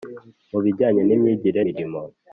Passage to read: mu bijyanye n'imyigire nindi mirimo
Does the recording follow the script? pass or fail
fail